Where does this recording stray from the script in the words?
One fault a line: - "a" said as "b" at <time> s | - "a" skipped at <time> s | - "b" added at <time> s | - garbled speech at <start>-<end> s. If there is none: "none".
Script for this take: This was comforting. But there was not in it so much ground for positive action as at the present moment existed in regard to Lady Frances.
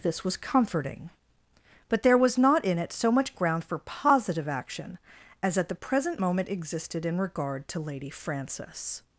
none